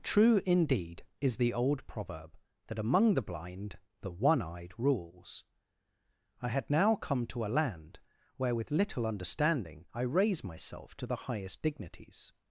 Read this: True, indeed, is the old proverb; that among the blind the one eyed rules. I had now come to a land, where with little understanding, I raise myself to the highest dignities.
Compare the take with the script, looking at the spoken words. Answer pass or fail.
pass